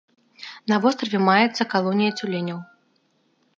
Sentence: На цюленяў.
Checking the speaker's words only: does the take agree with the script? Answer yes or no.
no